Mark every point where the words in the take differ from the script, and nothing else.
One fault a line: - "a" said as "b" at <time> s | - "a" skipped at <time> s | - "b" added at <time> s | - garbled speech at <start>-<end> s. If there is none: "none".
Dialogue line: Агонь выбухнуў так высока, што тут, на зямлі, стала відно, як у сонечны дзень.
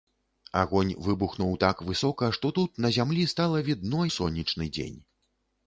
- "як" skipped at 4.0 s